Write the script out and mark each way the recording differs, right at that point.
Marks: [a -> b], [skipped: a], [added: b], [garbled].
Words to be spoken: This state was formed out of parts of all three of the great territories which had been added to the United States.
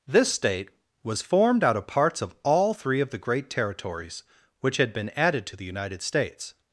This state was formed out of parts of all three of the great territories which had been added to the United States.